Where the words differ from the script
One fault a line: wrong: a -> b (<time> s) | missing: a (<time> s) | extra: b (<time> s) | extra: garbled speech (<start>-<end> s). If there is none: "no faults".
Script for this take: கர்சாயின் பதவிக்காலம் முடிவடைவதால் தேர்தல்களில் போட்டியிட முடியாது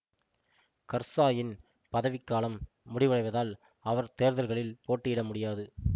extra: அவர் (3.9 s)